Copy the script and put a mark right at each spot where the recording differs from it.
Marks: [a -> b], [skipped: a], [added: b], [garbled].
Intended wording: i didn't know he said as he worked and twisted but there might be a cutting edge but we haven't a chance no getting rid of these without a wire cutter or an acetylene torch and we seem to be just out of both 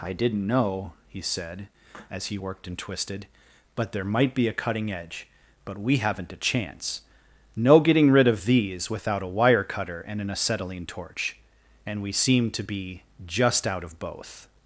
i didn't know he said as he worked and twisted but there might be a cutting edge but we haven't a chance no getting rid of these without a wire cutter [or -> and] an acetylene torch and we seem to be just out of both